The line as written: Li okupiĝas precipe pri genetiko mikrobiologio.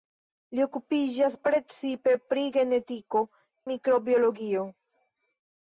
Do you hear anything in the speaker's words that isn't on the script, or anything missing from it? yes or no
no